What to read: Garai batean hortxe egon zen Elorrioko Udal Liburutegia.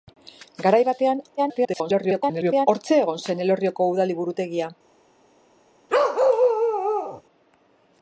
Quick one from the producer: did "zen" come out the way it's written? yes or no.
yes